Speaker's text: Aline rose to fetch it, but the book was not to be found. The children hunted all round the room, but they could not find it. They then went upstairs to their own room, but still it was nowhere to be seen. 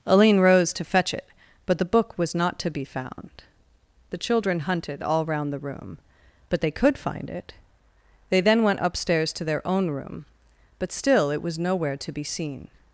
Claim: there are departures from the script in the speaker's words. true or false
true